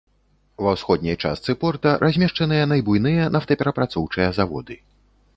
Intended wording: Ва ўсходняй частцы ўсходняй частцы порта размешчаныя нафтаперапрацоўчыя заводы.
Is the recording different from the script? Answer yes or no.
yes